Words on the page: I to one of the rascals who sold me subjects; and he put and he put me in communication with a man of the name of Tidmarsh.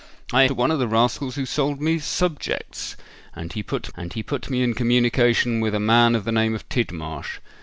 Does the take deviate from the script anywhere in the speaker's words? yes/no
no